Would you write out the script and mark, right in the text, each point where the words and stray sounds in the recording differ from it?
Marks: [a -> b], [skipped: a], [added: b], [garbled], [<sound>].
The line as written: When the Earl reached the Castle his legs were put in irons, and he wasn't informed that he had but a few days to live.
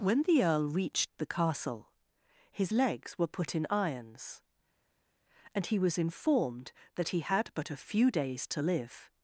When the Earl reached the Castle his legs were put in irons, and he [wasn't -> was] informed that he had but a few days to live.